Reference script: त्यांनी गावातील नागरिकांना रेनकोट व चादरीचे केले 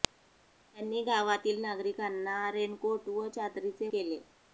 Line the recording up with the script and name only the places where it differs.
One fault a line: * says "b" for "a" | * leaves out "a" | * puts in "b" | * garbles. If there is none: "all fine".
all fine